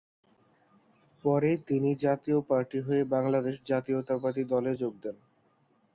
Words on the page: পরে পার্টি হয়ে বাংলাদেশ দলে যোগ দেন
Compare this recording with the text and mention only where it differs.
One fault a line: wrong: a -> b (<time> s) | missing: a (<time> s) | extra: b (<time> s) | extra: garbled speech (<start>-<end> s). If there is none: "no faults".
extra: তিনি জাতীয় (1.7 s)
extra: জাতীয়তাবাদী (3.6 s)